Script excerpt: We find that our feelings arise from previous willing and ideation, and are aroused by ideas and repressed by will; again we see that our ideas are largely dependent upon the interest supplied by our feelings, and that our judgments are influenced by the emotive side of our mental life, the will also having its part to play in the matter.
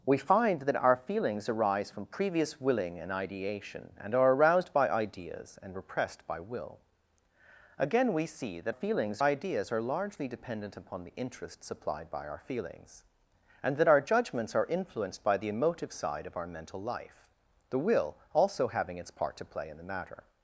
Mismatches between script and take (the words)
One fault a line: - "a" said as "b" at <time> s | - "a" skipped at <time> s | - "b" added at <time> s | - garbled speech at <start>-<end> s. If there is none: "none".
- "our" said as "feelings" at 8.7 s